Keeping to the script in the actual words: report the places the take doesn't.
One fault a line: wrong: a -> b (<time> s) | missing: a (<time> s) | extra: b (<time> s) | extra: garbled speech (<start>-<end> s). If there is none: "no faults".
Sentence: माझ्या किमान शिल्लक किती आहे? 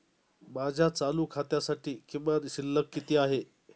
extra: चालू खात्यासाठी (0.9 s)